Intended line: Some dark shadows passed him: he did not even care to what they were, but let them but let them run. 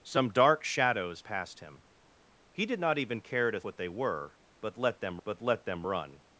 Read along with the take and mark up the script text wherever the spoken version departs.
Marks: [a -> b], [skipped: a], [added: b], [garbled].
Some dark shadows passed him: he did not even care to what they were, but let them but let them run.